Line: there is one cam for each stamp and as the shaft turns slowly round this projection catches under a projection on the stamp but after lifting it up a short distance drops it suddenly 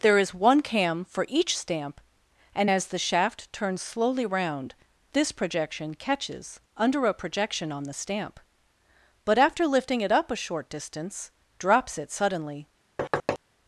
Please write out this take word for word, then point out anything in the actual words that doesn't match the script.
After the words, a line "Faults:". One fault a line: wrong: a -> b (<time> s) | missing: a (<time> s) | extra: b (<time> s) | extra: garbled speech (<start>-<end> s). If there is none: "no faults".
there is one cam for each stamp and as the shaft turns slowly round this projection catches under a projection on the stamp but after lifting it up a short distance drops it suddenly
Faults:
no faults